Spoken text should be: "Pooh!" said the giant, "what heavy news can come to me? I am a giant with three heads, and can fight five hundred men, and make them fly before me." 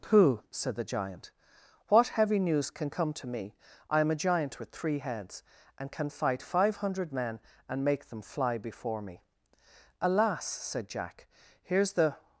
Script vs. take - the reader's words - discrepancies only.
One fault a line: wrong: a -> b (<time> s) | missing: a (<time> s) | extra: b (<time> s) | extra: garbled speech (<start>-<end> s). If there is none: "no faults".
extra: Alas said Jack here's the (10.0 s)